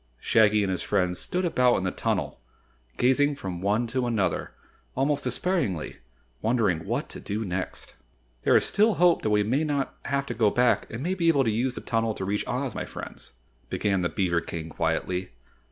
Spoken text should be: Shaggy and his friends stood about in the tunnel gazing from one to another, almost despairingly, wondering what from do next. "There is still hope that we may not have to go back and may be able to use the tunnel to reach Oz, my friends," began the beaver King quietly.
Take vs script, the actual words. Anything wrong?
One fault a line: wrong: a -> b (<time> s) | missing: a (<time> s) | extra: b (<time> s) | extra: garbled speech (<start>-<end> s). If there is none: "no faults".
wrong: from -> to (7.1 s)